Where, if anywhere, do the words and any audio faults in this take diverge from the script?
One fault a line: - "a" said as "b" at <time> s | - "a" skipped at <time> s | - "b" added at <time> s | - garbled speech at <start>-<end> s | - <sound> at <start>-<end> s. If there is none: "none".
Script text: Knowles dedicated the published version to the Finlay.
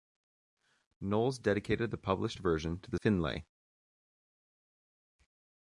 none